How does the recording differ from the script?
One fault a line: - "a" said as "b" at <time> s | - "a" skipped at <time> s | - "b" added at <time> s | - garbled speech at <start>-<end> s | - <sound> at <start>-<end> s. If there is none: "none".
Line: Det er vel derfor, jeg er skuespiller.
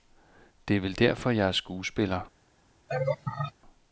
- laugh at 2.9-3.5 s